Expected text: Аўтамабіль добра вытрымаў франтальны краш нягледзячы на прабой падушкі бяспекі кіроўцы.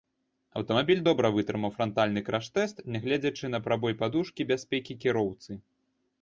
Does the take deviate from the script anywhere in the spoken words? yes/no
yes